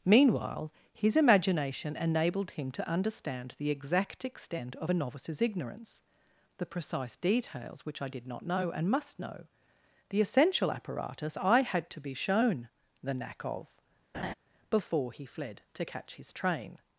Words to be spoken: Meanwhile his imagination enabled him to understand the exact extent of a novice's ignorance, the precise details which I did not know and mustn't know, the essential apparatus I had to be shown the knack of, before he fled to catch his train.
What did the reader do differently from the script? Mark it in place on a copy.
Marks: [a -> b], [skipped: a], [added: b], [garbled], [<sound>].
Meanwhile his imagination enabled him to understand the exact extent of a novice's ignorance, the precise details which I did not know and [mustn't -> must] know, the essential apparatus I had to be shown the knack of, [laugh] before he fled to catch his train.